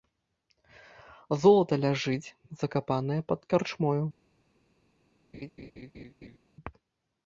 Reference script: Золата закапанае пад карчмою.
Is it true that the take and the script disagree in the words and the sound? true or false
true